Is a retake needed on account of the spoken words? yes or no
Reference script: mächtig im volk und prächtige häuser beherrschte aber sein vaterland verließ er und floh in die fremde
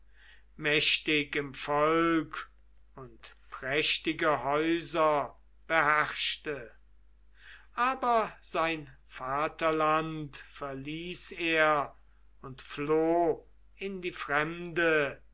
no